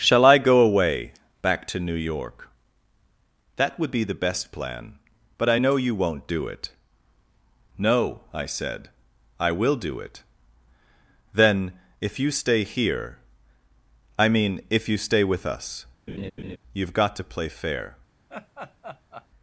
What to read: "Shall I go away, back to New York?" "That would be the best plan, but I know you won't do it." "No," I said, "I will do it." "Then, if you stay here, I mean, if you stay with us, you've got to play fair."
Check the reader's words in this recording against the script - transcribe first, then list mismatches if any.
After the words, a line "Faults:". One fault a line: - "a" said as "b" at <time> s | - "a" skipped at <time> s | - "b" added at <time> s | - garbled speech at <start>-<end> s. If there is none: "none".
"Shall I go away, back to New York?" "That would be the best plan, but I know you won't do it." "No," I said, "I will do it." "Then, if you stay here, I mean, if you stay with us, you've got to play fair."
Faults:
none